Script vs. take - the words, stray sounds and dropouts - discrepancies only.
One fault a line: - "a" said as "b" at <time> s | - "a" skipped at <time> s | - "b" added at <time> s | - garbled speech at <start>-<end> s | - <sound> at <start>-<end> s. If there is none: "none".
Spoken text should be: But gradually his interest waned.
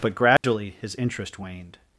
- dropout at 0.4-0.4 s